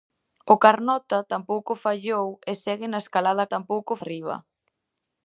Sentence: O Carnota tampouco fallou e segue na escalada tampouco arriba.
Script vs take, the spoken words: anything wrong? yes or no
no